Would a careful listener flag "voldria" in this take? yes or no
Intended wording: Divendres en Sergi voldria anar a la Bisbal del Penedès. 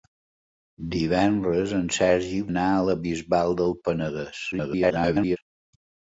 yes